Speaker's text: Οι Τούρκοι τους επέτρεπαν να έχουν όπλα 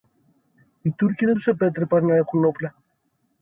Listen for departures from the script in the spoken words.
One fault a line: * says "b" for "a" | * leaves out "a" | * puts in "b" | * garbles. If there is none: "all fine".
* puts in "δεν"